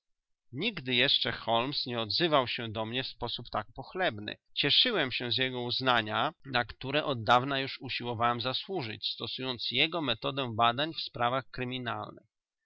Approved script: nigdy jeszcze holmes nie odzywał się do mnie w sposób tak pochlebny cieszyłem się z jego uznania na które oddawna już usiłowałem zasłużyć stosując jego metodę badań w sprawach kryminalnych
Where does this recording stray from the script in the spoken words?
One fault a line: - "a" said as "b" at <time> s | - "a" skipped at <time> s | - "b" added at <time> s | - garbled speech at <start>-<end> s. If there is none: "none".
none